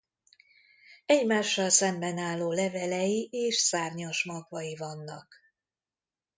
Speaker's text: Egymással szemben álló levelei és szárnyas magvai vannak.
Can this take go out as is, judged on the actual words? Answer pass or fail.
pass